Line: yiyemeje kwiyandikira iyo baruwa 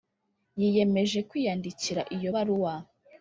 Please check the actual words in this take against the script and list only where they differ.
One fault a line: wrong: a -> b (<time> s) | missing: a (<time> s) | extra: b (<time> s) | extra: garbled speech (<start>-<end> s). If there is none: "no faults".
no faults